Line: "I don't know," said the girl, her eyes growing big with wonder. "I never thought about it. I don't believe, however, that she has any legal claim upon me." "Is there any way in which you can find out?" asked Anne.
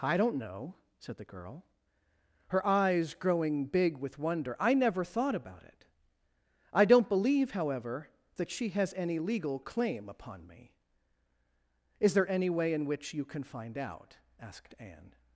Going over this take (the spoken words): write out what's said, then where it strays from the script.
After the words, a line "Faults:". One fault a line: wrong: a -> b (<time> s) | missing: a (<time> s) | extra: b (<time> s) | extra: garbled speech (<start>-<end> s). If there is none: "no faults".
"I don't know," said the girl, her eyes growing big with wonder. "I never thought about it. I don't believe, however, that she has any legal claim upon me." "Is there any way in which you can find out?" asked Anne.
Faults:
no faults